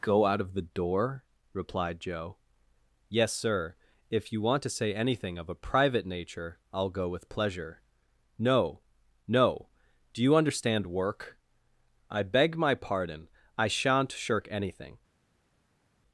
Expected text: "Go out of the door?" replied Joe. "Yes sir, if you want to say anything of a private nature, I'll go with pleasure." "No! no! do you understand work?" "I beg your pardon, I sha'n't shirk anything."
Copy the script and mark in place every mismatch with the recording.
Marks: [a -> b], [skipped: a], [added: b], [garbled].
"Go out of the door?" replied Joe. "Yes sir, if you want to say anything of a private nature, I'll go with pleasure." "No! no! do you understand work?" "I beg [your -> my] pardon, I sha'n't shirk anything."